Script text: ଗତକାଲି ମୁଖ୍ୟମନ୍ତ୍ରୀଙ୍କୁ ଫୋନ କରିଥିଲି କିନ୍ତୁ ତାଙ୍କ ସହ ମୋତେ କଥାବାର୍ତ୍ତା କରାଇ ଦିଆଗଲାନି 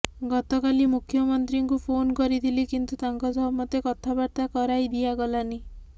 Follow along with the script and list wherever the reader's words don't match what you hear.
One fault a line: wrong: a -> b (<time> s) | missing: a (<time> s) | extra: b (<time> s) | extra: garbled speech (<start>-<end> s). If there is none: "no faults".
no faults